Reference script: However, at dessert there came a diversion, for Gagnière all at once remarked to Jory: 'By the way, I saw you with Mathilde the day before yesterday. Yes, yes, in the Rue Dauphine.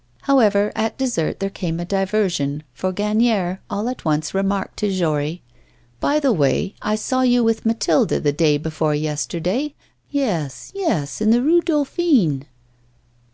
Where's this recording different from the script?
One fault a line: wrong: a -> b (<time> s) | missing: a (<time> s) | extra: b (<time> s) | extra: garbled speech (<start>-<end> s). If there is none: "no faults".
no faults